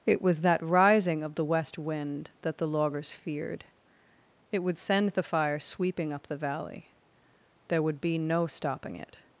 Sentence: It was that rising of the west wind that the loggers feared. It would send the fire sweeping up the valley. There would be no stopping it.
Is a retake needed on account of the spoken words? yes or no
no